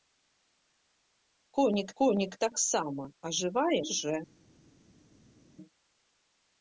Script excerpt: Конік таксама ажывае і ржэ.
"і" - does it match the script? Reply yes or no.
no